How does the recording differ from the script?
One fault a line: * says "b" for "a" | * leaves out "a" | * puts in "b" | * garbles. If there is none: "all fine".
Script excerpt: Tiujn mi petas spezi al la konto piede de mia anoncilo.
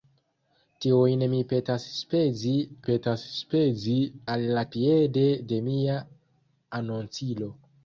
* puts in "petas spezi"
* leaves out "konto"